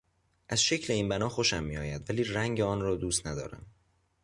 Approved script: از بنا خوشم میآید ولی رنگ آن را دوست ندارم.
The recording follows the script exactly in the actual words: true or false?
false